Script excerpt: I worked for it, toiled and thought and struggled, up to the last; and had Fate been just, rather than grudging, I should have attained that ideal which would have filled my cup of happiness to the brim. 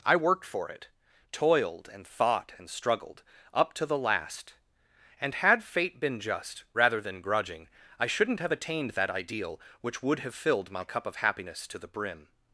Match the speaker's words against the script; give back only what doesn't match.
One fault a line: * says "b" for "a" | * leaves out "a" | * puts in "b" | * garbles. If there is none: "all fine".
* says "shouldn't" for "should"